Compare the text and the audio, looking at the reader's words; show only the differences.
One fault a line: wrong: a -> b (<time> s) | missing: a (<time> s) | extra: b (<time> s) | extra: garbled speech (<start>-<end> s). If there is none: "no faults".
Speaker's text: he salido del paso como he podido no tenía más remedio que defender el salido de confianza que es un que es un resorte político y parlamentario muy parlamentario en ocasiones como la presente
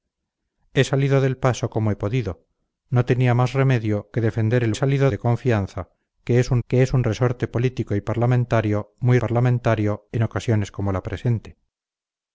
no faults